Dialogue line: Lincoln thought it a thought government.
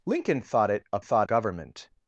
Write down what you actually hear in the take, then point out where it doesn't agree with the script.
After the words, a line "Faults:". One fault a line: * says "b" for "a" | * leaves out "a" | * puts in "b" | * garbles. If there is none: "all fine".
Lincoln thought it a thought government.
Faults:
all fine